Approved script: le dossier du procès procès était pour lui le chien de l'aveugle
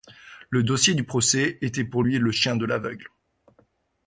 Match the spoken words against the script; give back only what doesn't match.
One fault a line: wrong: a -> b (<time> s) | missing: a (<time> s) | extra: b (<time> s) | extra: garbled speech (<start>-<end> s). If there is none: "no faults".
missing: procès (1.6 s)